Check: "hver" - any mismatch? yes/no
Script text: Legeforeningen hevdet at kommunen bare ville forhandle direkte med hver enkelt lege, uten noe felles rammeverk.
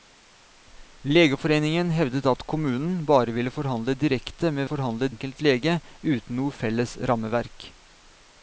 yes